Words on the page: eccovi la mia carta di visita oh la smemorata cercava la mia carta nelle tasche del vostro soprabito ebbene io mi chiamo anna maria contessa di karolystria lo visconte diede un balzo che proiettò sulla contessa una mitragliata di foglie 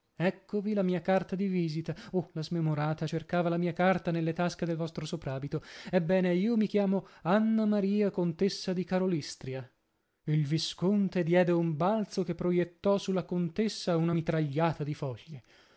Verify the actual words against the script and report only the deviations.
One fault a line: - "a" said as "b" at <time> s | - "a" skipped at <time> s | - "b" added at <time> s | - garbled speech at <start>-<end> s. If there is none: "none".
- "lo" said as "il" at 10.2 s